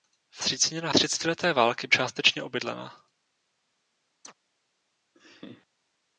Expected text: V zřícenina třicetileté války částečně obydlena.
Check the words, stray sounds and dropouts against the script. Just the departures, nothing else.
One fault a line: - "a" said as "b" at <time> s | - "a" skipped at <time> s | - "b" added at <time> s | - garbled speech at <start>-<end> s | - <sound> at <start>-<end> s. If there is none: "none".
- chirp at 4.2-4.3 s
- laugh at 5.1-5.7 s